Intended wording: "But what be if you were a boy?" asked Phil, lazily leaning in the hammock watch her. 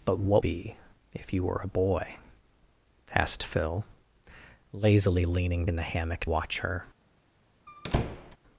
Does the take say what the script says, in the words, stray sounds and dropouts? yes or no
no